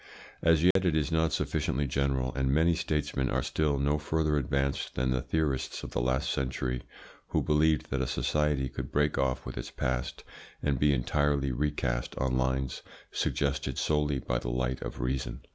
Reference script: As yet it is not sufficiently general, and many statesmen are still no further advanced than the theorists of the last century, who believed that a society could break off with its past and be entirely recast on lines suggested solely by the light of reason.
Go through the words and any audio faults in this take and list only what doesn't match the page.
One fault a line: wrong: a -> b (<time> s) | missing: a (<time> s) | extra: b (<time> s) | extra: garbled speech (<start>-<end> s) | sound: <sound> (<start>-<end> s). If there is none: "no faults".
sound: dropout (0.7-0.8 s)